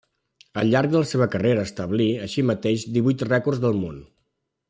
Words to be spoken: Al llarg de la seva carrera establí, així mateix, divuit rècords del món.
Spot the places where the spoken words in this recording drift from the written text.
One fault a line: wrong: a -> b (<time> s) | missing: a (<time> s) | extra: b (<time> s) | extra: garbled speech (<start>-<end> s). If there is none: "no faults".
no faults